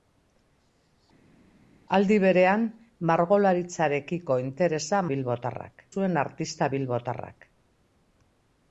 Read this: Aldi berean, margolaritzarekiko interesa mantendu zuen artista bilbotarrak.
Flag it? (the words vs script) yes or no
yes